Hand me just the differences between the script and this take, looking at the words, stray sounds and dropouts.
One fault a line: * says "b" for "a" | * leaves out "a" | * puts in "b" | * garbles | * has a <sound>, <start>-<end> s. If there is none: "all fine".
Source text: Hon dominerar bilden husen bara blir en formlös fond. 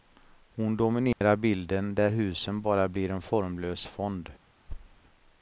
* has a dropout, 1.1-1.2 s
* puts in "där"
* has a thud, 4.7-5.0 s